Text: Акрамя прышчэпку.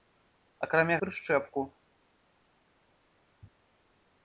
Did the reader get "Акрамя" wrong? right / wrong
right